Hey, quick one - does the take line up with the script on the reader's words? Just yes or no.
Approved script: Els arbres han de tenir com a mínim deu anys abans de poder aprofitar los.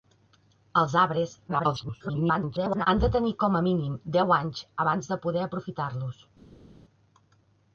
no